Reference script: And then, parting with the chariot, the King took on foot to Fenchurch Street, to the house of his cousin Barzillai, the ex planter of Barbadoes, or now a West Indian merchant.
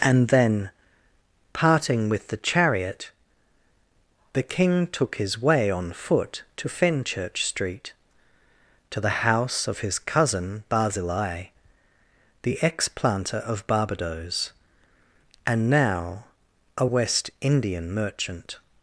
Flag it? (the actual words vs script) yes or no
yes